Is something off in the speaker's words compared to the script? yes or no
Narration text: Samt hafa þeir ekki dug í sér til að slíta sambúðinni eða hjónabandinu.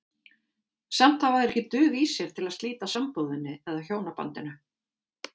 no